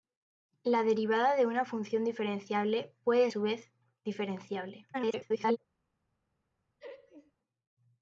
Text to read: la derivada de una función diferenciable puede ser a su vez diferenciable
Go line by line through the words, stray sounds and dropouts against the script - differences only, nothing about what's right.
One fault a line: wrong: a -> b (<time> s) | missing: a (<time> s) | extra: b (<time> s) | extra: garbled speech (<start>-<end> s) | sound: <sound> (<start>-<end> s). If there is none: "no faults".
missing: ser a (3.3 s)
extra: garbled speech (4.9-5.6 s)
sound: laugh (6.8-7.3 s)